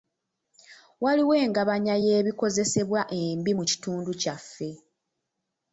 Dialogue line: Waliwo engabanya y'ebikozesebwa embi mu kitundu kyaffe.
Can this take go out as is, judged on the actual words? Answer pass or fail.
pass